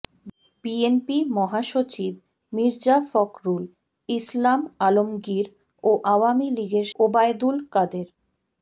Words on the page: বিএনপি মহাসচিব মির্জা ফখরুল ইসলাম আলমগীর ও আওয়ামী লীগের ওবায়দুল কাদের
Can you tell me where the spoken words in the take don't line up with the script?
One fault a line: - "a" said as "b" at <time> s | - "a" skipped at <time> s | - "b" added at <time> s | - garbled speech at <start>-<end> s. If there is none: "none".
none